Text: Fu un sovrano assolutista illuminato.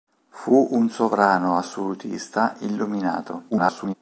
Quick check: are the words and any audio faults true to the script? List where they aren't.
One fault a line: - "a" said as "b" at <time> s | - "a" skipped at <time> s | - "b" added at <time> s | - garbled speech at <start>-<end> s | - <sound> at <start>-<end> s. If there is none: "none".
- garbled speech at 3.5-3.9 s